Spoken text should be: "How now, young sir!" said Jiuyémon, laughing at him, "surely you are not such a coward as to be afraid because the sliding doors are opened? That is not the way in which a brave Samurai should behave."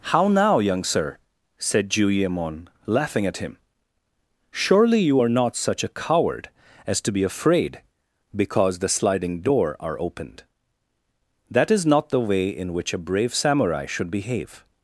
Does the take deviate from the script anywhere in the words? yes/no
yes